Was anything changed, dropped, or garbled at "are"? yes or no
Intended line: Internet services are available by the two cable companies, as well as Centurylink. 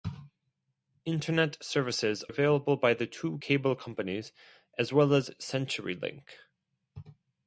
yes